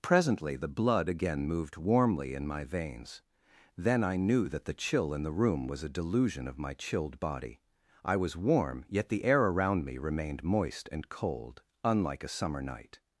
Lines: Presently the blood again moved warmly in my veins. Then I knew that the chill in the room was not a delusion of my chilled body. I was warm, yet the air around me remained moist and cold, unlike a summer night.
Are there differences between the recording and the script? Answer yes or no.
yes